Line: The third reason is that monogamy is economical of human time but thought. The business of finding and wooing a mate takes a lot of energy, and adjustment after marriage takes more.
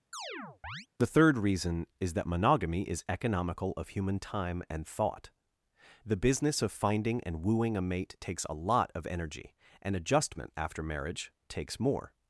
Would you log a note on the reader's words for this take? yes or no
yes